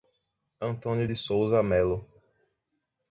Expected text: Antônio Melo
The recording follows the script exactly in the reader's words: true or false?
false